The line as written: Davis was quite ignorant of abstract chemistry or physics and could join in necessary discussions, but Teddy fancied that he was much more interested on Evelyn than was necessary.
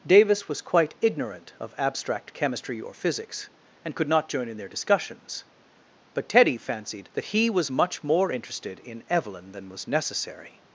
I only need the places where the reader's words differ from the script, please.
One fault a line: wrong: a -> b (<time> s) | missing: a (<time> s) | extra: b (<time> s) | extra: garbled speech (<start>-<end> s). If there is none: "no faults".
extra: not (4.1 s)
wrong: necessary -> their (4.6 s)
wrong: on -> in (8.8 s)